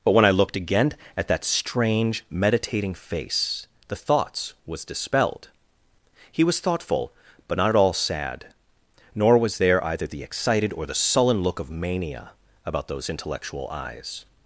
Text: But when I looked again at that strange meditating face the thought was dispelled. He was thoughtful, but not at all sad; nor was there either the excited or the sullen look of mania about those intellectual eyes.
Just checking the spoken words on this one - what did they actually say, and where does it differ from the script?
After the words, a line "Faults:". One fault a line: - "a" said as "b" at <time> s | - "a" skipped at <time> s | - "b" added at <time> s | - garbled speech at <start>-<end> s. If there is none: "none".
But when I looked again at that strange meditating face the thoughts was dispelled. He was thoughtful, but not at all sad; nor was there either the excited or the sullen look of mania about those intellectual eyes.
Faults:
- "thought" said as "thoughts" at 4.0 s